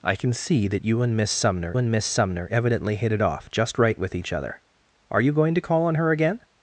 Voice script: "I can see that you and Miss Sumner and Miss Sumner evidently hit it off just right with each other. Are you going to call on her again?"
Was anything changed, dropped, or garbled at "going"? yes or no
no